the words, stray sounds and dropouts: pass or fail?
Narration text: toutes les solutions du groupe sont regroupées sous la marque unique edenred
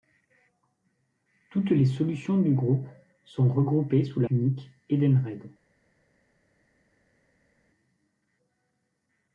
fail